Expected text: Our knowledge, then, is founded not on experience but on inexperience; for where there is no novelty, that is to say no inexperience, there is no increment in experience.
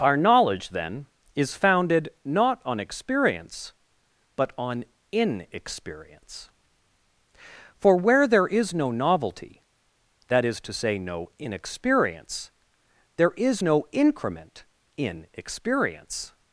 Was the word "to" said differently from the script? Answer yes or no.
no